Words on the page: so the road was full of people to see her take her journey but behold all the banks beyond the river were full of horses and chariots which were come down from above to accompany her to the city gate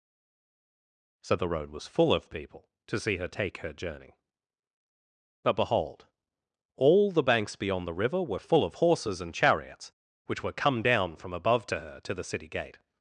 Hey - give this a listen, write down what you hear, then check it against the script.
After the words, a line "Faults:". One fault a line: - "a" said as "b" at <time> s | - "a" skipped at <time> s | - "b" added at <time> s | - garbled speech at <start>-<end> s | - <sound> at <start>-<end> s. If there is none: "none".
so the road was full of people to see her take her journey but behold all the banks beyond the river were full of horses and chariots which were come down from above to her to the city gate
Faults:
- "accompany" skipped at 11.8 s